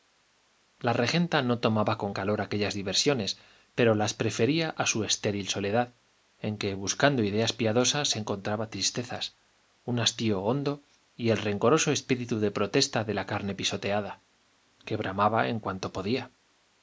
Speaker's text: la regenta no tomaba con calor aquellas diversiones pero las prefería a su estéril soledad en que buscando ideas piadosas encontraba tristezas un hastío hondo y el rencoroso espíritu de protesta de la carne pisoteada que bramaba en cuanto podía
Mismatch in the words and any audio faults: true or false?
false